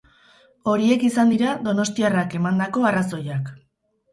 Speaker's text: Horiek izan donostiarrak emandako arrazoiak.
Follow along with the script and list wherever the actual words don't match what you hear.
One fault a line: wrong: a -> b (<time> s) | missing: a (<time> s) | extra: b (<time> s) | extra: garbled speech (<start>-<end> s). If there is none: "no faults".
extra: dira (1.3 s)